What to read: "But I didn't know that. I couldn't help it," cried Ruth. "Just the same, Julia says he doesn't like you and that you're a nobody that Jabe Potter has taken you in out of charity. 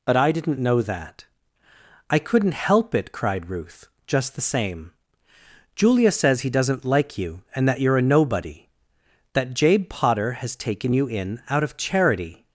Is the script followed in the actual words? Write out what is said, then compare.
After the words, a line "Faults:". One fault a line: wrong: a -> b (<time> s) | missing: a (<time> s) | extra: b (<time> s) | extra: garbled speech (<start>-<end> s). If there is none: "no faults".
"But I didn't know that. I couldn't help it," cried Ruth. "Just the same, Julia says he doesn't like you and that you're a nobody that Jabe Potter has taken you in out of charity.
Faults:
no faults